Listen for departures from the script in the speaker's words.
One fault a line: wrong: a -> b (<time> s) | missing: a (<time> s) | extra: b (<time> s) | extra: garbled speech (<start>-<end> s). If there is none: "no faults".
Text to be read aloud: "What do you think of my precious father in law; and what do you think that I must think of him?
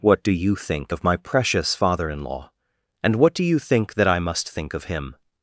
no faults